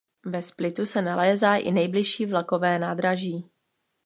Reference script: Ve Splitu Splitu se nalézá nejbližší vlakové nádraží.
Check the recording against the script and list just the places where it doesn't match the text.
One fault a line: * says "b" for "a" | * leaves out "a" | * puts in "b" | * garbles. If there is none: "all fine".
* leaves out "Splitu"
* puts in "i"